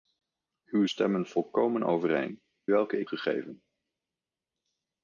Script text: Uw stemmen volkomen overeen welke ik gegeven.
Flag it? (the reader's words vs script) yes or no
no